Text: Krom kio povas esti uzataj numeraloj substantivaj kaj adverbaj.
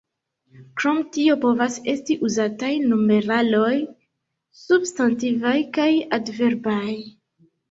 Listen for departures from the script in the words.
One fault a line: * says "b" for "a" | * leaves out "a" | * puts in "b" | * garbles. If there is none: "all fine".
* says "tio" for "kio"